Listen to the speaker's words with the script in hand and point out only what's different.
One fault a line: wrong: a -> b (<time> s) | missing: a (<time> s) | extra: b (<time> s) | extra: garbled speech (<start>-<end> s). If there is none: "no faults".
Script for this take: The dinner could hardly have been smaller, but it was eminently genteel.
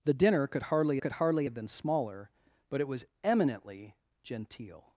extra: could hardly (1.0 s)